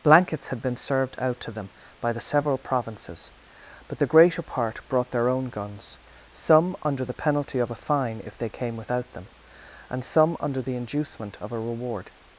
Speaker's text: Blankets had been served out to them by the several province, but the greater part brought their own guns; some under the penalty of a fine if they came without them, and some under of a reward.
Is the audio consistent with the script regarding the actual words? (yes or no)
no